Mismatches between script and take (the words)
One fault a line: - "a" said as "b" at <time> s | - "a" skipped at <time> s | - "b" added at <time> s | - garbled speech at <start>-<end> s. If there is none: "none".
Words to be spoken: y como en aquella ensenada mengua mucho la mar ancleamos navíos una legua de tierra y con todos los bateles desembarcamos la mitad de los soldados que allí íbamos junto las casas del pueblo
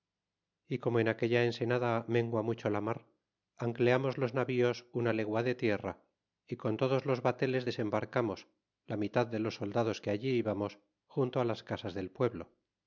- "los" added at 4.2 s